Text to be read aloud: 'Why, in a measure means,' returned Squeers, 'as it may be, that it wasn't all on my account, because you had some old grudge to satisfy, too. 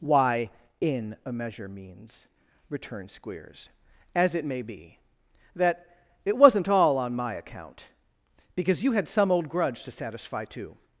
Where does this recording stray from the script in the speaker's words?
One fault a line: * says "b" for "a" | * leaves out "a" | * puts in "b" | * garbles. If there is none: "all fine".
all fine